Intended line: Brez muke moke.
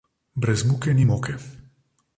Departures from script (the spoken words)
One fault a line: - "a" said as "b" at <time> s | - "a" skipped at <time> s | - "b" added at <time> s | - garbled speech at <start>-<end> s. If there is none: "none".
- "ni" added at 0.9 s